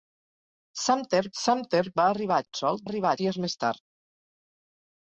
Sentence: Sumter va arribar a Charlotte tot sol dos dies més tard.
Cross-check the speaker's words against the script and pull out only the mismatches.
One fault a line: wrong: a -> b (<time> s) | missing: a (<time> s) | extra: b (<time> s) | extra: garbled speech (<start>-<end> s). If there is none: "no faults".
extra: sumter (1.4 s)
missing: Charlotte (2.5 s)
wrong: dos -> arribar (2.9 s)